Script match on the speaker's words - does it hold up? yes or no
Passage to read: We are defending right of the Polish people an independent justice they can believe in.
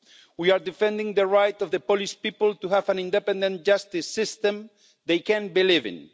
no